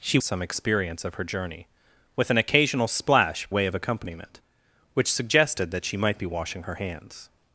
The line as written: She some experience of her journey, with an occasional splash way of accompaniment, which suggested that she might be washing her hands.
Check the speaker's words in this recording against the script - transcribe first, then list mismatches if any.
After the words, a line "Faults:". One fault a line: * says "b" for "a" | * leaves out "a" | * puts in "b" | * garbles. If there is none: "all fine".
She some experience of her journey, with an occasional splash way of accompaniment, which suggested that she might be washing her hands.
Faults:
all fine